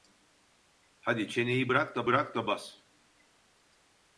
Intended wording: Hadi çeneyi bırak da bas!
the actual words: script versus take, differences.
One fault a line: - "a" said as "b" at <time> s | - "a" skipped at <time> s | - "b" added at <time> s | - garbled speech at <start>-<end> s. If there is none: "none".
- "bırak da" added at 2.1 s